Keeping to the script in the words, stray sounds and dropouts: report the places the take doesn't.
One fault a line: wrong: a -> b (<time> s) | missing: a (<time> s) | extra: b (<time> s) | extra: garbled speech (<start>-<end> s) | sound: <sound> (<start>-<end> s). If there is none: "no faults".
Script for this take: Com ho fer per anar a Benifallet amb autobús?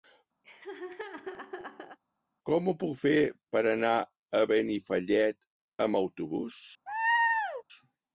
sound: laugh (0.4-2.0 s)
extra: puc (2.8 s)
sound: laugh (6.9-7.6 s)